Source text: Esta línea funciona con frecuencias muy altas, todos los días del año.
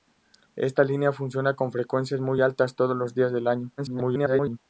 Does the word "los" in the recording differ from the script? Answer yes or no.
no